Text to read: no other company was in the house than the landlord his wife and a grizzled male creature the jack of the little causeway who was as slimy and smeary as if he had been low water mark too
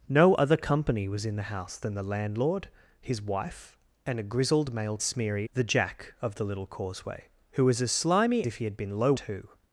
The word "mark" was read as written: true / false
false